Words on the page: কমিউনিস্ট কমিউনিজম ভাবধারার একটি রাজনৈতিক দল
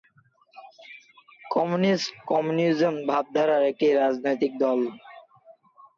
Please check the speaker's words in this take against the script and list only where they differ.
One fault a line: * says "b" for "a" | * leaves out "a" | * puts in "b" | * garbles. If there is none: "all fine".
all fine